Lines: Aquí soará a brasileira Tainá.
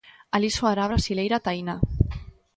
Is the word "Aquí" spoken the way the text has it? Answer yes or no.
no